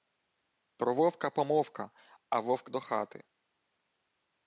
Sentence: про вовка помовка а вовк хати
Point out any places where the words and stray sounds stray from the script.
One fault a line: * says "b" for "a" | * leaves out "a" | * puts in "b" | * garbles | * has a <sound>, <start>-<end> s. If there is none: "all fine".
* puts in "до"